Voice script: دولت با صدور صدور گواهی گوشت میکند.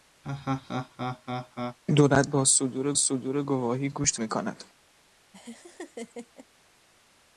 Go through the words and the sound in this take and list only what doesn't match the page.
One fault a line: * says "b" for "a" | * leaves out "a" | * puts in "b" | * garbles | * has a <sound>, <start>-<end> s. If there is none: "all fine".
* has a laugh, 0.2-1.8 s
* has a laugh, 5.3-6.5 s